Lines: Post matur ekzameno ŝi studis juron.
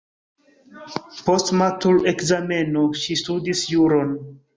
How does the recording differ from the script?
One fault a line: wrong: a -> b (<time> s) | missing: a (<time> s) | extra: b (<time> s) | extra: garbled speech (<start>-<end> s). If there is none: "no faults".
no faults